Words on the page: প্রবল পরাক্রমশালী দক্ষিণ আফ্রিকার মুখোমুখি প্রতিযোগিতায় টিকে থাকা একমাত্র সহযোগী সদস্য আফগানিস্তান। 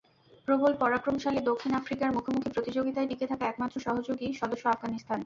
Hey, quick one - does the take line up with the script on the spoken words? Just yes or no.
yes